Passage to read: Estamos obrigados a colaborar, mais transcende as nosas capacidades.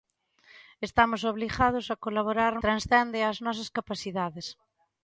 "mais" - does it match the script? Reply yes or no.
no